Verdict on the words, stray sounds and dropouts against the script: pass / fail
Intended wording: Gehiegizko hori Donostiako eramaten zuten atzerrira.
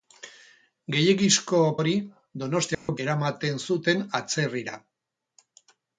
fail